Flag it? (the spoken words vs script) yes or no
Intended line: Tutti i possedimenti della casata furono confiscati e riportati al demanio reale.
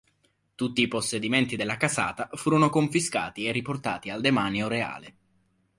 no